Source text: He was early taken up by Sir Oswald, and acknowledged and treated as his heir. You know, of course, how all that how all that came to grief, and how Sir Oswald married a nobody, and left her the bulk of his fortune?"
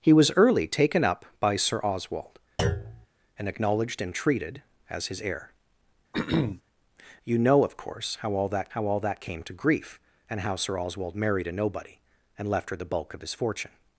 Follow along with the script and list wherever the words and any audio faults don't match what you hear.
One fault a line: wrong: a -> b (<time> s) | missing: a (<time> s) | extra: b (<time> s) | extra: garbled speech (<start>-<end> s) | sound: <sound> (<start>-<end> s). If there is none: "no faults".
sound: thud (2.6-3.1 s)
sound: throat clearing (6.1-6.6 s)